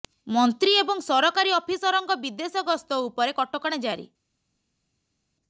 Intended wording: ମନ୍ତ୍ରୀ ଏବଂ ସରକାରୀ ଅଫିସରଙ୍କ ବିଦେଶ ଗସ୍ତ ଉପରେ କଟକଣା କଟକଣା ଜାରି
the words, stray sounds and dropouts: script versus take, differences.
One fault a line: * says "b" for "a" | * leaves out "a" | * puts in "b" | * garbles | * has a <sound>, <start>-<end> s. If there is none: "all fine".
* leaves out "କଟକଣା"